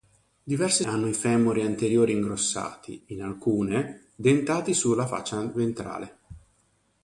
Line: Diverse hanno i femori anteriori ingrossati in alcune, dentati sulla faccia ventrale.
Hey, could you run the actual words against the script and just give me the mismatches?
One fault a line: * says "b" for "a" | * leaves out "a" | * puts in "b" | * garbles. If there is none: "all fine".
all fine